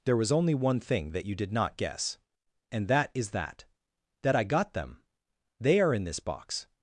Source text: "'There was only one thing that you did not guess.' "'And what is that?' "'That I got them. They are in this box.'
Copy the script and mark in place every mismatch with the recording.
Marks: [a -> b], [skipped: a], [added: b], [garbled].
"'There was only one thing that you did not guess.' "'And [what -> that] is that?' "'That I got them. They are in this box.'